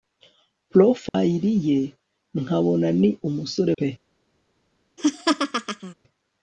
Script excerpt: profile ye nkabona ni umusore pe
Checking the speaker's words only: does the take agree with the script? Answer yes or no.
yes